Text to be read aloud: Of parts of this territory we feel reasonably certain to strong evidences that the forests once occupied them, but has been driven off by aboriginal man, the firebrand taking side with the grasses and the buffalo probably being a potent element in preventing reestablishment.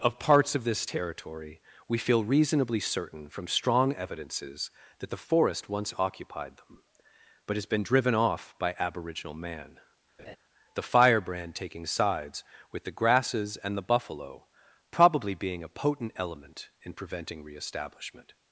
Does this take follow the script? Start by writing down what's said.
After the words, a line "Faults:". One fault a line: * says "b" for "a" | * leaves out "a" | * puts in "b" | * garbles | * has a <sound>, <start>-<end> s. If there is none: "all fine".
Of parts of this territory we feel reasonably certain from strong evidences that the forest once occupied them, but has been driven off by aboriginal man, the firebrand taking sides with the grasses and the buffalo probably being a potent element in preventing reestablishment.
Faults:
* says "from" for "to"
* says "forest" for "forests"
* has a laugh, 10.2-10.4 s
* says "sides" for "side"